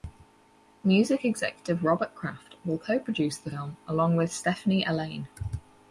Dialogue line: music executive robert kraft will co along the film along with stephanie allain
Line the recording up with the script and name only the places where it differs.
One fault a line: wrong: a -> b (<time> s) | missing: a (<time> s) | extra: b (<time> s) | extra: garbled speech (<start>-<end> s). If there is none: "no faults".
wrong: along -> produce (3.0 s)